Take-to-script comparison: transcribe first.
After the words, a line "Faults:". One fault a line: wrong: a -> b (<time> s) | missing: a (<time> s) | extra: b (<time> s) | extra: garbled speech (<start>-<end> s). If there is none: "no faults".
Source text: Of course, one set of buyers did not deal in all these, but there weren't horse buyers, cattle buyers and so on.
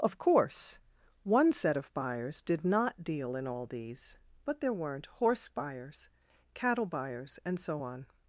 Of course, one set of buyers did not deal in all these, but there weren't horse buyers, cattle buyers and so on.
Faults:
no faults